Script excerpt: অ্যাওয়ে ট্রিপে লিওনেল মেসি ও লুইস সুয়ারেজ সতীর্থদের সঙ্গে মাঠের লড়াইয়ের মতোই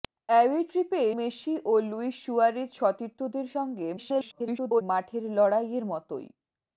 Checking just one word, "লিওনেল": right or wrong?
wrong